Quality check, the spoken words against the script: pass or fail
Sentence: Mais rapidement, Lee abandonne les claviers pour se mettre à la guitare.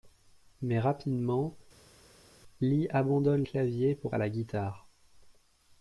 fail